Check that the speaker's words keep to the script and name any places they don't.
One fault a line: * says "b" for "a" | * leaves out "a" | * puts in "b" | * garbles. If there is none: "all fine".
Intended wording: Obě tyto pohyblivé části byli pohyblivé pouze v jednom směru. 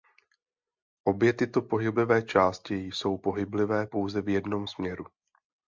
* says "jsou" for "byli"